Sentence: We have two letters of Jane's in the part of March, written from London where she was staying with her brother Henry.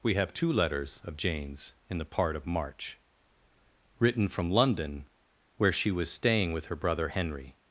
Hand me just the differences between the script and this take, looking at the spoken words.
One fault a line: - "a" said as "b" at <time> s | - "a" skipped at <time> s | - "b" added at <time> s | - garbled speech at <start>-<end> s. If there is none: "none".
none